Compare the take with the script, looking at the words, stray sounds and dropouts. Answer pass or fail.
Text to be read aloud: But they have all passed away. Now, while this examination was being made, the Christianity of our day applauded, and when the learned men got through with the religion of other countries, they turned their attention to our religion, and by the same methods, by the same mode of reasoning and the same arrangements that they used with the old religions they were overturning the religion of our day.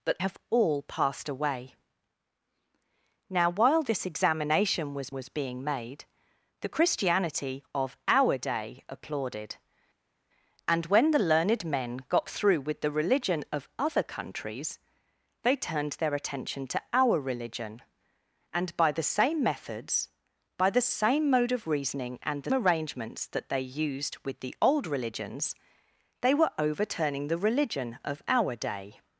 fail